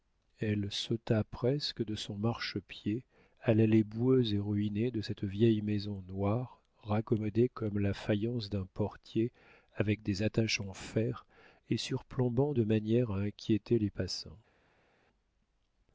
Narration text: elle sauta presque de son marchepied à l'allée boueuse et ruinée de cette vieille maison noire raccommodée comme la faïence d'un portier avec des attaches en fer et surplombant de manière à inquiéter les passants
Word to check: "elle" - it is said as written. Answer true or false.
true